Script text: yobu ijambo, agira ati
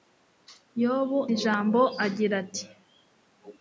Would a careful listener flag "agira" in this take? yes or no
no